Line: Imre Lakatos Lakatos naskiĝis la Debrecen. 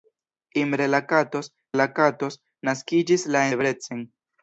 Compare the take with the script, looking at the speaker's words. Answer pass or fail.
pass